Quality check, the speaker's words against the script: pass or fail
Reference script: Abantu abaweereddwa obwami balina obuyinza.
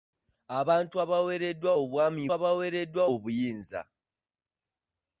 fail